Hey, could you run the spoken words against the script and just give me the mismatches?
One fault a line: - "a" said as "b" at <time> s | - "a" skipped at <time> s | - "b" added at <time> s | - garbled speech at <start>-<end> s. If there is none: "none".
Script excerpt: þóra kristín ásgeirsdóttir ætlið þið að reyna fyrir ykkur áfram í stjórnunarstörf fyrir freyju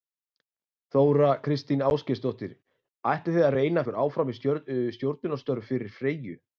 - "fyrir" skipped at 3.9 s